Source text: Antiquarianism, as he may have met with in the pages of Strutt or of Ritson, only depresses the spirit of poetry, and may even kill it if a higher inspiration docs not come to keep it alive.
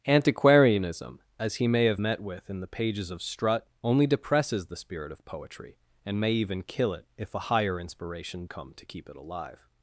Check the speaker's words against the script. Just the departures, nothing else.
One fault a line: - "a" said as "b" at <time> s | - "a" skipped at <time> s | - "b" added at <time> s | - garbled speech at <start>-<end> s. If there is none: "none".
- "or of Ritson" skipped at 3.7 s
- "docs not" skipped at 8.5 s